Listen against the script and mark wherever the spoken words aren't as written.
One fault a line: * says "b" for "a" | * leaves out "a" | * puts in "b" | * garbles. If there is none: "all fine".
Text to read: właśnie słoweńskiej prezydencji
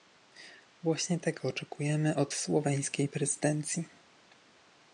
* puts in "tego oczekujemy od"